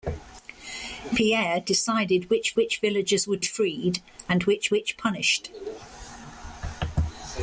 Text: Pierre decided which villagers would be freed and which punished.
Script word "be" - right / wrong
wrong